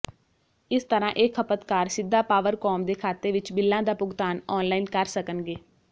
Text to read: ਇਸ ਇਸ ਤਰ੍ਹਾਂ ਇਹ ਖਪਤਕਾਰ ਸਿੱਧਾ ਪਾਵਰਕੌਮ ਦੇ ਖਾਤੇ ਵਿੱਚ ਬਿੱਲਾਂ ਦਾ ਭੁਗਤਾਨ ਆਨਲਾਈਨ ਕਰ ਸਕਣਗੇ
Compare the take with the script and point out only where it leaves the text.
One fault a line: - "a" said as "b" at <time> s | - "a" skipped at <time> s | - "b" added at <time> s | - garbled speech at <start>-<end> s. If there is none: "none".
- "ਇਸ" skipped at 0.8 s